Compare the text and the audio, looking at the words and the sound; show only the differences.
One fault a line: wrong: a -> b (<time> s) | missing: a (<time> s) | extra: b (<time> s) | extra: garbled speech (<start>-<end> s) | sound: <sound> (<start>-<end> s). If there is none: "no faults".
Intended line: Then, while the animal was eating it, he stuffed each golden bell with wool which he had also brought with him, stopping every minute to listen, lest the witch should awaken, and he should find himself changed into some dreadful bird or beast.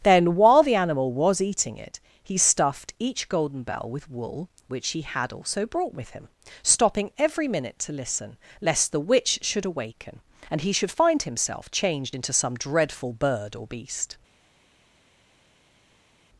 no faults